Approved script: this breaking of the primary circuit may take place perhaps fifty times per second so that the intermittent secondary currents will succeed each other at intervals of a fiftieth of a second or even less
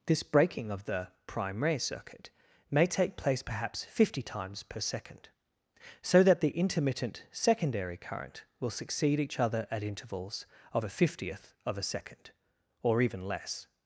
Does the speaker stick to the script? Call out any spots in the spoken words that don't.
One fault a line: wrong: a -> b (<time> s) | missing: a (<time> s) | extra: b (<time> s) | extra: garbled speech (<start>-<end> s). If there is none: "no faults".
wrong: currents -> current (8.0 s)